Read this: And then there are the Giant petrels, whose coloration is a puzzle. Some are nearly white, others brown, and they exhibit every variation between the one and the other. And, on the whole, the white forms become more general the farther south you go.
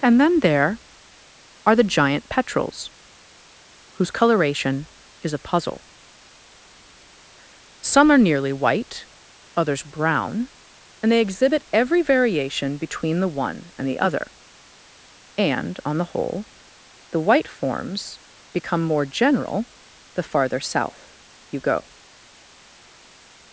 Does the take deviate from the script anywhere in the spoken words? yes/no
no